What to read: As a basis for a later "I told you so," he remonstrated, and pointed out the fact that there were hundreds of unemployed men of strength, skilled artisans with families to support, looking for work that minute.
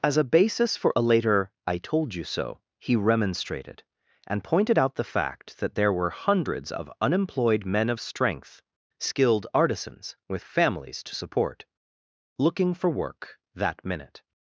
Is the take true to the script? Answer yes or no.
yes